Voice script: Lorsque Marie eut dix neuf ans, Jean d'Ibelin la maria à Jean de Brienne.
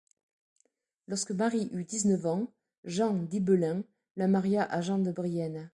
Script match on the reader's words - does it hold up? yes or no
yes